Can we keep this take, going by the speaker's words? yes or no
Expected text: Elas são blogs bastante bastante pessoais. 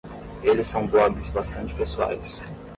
no